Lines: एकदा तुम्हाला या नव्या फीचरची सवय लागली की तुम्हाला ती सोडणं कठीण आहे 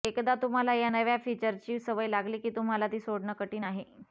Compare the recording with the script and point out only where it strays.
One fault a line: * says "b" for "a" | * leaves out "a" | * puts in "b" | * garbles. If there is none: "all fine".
all fine